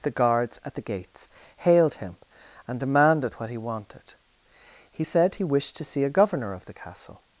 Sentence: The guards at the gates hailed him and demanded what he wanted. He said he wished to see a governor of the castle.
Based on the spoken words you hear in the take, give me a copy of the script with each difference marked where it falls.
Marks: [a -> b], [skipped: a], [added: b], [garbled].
The guards at the gates hailed him and demanded what he wanted. He said he wished to see a governor of the castle.